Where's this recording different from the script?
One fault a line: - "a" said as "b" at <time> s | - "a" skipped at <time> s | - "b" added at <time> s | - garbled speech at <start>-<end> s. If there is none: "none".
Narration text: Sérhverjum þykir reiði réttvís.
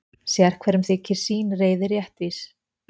- "sín" added at 1.2 s